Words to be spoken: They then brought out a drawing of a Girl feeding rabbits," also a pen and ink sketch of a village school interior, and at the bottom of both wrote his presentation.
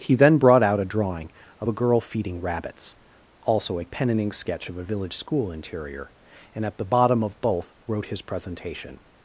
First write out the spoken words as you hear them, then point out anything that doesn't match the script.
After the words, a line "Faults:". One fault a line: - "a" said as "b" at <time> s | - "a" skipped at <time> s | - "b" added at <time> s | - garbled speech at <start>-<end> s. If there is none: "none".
He then brought out a drawing of a Girl feeding rabbits," also a pen and ink sketch of a village school interior, and at the bottom of both wrote his presentation.
Faults:
- "They" said as "He" at 0.0 s